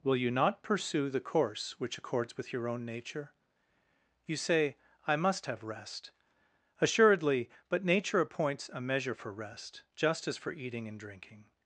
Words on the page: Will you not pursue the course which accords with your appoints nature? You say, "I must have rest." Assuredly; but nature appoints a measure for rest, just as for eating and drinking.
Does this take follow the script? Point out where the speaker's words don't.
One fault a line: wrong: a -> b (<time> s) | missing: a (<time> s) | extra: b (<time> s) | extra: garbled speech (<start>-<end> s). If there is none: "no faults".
wrong: appoints -> own (2.7 s)